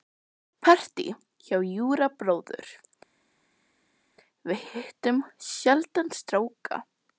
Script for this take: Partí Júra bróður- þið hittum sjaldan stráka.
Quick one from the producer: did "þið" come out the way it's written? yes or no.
no